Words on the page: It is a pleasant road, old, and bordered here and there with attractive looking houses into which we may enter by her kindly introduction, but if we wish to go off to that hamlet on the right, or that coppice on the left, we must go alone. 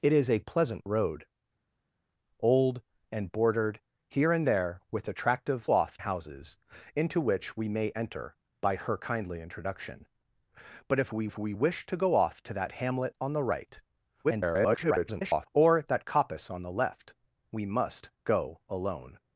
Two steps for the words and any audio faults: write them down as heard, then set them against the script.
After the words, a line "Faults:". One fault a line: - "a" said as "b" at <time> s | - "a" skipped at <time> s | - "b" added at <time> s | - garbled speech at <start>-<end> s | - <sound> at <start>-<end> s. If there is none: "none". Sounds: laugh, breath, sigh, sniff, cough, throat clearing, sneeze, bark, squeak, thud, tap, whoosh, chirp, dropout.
It is a pleasant road, old, and bordered here and there with attractive off houses into which we may enter by her kindly introduction, but if we if we wish to go off to that hamlet on the right, [garbled] or that coppice on the left, we must go alone.
Faults:
- "looking" said as "off" at 5.7 s
- "if we" added at 11.2 s
- garbled speech at 14.2-15.5 s